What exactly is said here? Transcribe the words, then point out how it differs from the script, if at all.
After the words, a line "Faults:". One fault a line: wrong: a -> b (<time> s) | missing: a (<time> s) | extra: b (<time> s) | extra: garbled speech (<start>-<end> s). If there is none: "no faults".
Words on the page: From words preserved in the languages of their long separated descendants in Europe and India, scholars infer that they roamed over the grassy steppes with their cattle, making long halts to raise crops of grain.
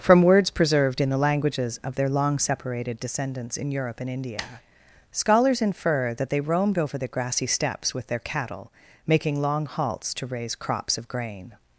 From words preserved in the languages of their long separated descendants in Europe and India, scholars infer that they roamed over the grassy steppes with their cattle, making long halts to raise crops of grain.
Faults:
no faults